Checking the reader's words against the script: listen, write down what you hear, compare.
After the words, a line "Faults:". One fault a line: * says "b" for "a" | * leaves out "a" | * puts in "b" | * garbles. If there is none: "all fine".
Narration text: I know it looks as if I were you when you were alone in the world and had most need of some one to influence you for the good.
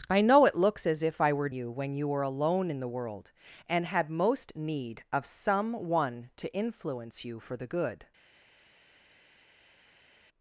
I know it looks as if I were you when you were alone in the world and had most need of some one to influence you for the good.
Faults:
all fine